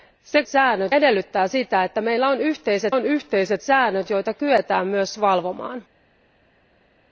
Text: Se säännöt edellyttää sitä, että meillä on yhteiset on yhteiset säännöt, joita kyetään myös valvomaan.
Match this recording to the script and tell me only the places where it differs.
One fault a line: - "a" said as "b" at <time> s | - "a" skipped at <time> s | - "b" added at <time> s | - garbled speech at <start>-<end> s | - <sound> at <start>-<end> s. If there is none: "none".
none